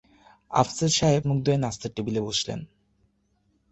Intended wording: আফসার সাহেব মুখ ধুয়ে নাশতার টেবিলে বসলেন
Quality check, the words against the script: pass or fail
pass